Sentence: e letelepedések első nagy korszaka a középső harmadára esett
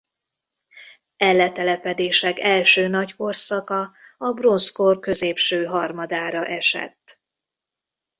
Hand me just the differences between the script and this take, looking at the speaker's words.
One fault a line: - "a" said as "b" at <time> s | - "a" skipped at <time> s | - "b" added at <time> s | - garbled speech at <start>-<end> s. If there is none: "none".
- "bronzkor" added at 4.3 s